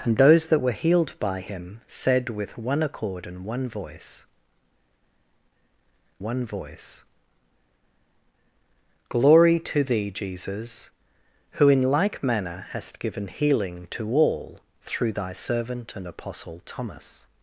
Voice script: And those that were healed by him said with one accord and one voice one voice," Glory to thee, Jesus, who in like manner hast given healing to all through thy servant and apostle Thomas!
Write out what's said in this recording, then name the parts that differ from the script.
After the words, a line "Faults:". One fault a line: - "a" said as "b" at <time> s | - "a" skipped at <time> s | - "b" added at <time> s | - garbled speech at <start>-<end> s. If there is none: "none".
And those that were healed by him said with one accord and one voice one voice," Glory to thee, Jesus, who in like manner hast given healing to all through thy servant and apostle Thomas!
Faults:
none